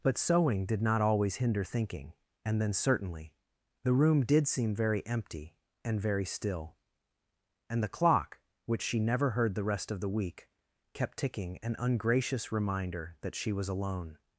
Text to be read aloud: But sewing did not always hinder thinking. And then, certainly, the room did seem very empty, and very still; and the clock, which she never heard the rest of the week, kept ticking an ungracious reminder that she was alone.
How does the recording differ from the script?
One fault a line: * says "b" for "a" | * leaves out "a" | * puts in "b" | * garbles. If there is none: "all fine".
all fine